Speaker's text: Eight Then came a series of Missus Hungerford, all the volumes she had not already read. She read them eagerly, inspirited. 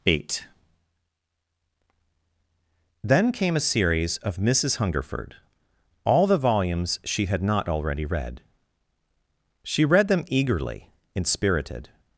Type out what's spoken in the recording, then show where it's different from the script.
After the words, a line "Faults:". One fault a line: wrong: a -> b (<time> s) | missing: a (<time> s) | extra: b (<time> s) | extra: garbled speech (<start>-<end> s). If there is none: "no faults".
Eight Then came a series of Missus Hungerford, all the volumes she had not already read. She read them eagerly, inspirited.
Faults:
no faults